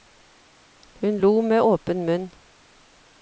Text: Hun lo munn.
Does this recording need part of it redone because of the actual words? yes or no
yes